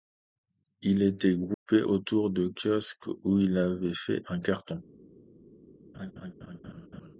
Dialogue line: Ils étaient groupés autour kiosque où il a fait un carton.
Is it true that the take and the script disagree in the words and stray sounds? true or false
true